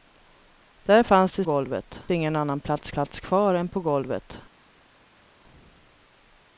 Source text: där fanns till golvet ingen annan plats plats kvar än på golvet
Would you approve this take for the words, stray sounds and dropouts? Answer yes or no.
yes